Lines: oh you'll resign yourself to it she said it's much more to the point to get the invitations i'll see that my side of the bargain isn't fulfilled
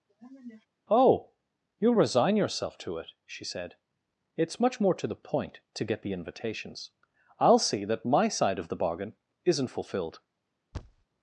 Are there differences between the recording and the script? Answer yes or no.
no